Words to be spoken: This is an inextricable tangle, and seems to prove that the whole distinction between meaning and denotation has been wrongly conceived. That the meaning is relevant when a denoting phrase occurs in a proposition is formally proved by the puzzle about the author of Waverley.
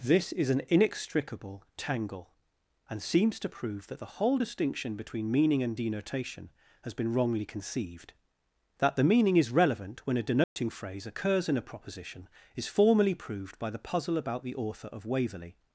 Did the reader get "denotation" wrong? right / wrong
right